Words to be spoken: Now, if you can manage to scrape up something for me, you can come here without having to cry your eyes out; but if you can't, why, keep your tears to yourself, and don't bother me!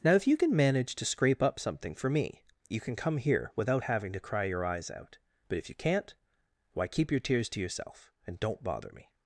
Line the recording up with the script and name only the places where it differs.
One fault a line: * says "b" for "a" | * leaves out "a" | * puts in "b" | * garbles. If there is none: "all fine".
all fine